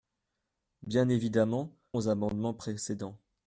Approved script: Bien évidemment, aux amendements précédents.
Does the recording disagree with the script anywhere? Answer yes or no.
no